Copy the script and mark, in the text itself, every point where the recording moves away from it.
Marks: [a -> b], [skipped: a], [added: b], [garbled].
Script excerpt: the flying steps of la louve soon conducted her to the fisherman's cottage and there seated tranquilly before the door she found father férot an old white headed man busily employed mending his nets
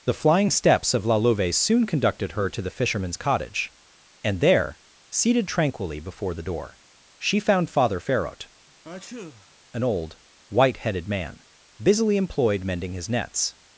the flying steps of la louve soon conducted her to the fisherman's cottage and there seated tranquilly before the door she found father férot an old white headed man busily employed mending his nets